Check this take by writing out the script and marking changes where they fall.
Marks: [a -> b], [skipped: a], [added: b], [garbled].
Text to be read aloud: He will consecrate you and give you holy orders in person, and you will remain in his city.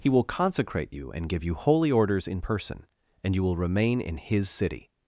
He will consecrate you and give you holy orders in person, and you will remain in his city.